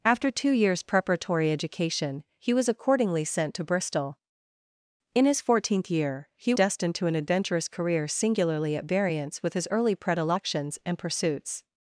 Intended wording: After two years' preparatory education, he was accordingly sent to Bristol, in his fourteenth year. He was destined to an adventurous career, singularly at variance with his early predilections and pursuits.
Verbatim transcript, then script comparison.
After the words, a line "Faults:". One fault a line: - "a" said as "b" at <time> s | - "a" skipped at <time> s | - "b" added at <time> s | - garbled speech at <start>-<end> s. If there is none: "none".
After two years' preparatory education, he was accordingly sent to Bristol, in his fourteenth year. He destined to an adventurous career, singularly at variance with his early predilections and pursuits.
Faults:
- "was" skipped at 6.5 s